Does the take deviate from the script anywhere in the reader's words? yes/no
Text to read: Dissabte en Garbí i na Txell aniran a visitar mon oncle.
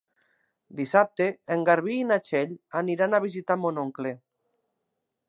no